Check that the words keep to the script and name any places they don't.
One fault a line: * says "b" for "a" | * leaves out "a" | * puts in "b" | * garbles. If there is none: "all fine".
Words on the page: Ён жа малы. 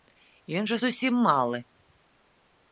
* puts in "зусім"